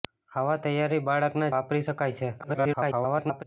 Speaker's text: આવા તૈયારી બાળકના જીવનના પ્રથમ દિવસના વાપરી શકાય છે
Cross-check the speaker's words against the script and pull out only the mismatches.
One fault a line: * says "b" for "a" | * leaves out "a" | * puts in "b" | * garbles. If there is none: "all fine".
* leaves out "જીવનના પ્રથમ દિવસના"
* garbles